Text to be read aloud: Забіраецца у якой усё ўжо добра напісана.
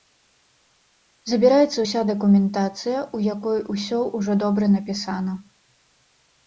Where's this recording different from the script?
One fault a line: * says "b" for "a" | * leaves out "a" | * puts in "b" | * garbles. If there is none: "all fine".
* puts in "ўся дакументацыя"